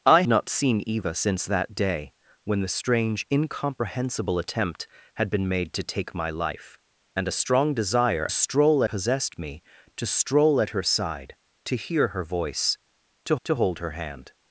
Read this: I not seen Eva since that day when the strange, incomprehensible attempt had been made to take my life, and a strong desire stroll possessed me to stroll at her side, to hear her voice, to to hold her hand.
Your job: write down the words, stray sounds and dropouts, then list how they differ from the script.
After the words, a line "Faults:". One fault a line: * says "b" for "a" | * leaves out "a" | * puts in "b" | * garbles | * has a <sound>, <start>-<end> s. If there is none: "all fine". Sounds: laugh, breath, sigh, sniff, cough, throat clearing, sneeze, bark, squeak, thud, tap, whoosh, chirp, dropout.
I not seen Eva since that day when the strange, incomprehensible attempt had been made to take my life, and a strong desire stroll possessed me to stroll at her side, to hear her voice, to to hold her hand.
Faults:
all fine